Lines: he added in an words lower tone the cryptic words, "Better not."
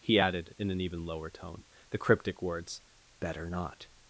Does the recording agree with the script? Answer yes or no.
no